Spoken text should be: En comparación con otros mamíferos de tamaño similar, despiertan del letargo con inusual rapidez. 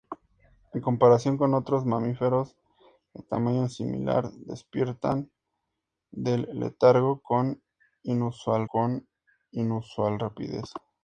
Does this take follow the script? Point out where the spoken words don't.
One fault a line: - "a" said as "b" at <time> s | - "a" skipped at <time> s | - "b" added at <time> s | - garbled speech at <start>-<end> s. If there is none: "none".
- "con inusual" added at 8.6 s